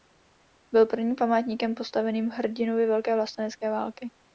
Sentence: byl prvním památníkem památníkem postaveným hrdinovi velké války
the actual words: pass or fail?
fail